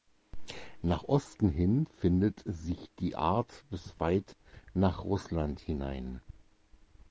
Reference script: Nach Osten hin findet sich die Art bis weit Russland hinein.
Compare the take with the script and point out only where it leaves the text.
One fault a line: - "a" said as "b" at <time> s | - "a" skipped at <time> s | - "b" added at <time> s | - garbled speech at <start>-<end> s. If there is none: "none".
- "nach" added at 4.7 s